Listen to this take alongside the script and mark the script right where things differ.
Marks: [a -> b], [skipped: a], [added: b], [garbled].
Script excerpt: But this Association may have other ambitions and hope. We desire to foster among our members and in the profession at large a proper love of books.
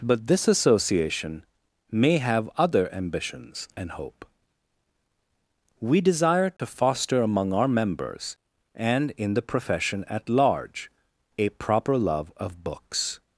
But this Association may have other ambitions and hope. We desire to foster among our members and in the profession at large a proper love of books.